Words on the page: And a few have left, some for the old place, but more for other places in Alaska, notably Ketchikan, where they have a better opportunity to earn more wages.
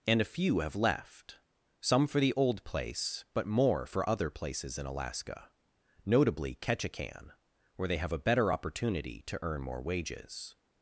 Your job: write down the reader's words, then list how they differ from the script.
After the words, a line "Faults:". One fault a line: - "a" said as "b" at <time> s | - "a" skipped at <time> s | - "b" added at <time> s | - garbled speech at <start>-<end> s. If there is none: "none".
And a few have left, some for the old place, but more for other places in Alaska, notably Ketchikan, where they have a better opportunity to earn more wages.
Faults:
none